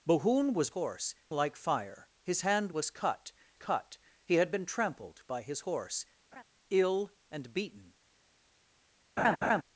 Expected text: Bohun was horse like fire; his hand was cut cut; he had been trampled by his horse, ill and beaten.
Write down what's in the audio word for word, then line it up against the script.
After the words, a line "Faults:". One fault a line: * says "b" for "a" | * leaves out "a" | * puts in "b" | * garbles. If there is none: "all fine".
Bohun was horse like fire; his hand was cut cut; he had been trampled by his horse, ill and beaten.
Faults:
all fine